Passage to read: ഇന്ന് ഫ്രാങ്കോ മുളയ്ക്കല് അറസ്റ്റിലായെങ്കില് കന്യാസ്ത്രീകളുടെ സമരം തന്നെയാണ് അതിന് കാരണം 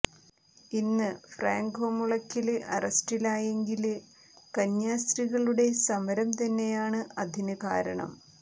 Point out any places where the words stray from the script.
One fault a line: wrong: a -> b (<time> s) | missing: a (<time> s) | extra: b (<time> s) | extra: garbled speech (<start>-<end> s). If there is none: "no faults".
no faults